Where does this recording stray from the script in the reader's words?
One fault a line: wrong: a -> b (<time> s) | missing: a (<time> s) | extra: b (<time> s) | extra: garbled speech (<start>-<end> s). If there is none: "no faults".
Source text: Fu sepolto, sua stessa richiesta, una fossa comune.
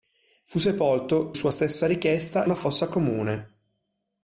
no faults